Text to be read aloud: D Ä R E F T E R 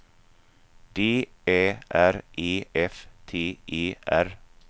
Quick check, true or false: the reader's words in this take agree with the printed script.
true